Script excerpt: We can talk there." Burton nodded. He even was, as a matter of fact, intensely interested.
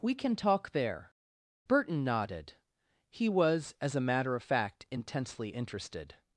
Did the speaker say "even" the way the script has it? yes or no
no